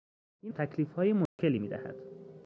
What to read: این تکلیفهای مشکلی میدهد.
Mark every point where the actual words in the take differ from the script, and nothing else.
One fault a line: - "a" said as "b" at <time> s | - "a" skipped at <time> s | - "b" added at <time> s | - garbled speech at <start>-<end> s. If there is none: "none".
none